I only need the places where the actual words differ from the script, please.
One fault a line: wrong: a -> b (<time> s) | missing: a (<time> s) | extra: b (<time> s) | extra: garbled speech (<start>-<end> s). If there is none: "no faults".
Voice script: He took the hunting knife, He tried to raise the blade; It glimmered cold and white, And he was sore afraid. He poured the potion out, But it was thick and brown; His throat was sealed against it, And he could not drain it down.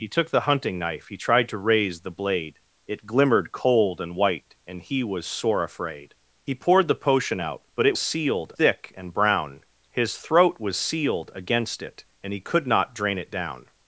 wrong: was -> sealed (8.0 s)